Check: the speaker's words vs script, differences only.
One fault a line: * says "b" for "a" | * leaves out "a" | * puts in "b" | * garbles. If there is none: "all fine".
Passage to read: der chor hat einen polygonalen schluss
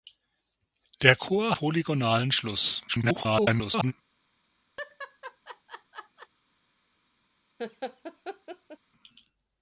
* leaves out "hat einen"
* garbles